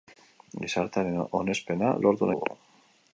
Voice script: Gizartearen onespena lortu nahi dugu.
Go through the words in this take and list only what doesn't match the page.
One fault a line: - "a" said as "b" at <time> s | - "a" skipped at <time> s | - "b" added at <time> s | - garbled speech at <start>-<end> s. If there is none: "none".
- "nahi" skipped at 2.3 s